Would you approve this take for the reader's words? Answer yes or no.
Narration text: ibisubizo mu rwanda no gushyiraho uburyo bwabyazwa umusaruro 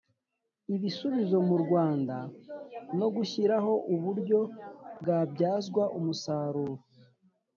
yes